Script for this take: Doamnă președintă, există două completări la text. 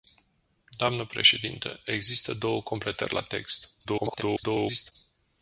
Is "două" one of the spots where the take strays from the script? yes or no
no